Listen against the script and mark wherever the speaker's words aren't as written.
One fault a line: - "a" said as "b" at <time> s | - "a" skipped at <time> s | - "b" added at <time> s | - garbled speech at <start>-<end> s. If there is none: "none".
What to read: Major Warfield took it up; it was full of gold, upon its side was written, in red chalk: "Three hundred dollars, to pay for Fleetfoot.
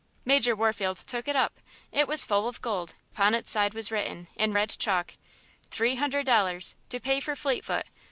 none